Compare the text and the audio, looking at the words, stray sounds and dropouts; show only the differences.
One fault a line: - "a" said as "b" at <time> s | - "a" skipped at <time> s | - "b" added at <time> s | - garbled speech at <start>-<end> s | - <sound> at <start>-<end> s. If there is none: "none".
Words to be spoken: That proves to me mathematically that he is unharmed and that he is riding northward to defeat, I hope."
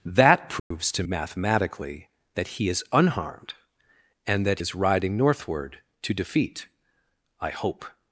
- dropout at 0.6-0.7 s
- "me" skipped at 1.0 s
- "he" skipped at 4.6 s